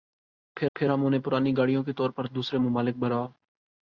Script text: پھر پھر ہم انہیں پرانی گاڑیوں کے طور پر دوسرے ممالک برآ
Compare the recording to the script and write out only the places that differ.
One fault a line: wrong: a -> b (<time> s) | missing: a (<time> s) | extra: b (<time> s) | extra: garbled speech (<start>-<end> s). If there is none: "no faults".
no faults